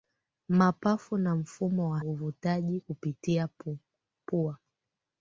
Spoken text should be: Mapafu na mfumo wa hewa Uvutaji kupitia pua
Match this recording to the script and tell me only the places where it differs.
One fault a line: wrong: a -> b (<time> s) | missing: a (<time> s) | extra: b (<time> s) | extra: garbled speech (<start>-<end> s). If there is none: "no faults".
missing: hewa (2.0 s)